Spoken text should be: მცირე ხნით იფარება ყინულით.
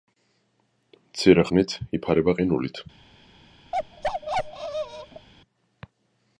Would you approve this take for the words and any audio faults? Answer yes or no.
no